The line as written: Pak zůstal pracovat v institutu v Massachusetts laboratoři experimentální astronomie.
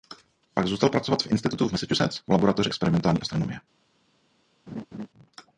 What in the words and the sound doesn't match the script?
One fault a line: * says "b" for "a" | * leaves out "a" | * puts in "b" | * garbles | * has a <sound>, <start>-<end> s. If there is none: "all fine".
* puts in "v"
* has a laugh, 4.7-5.1 s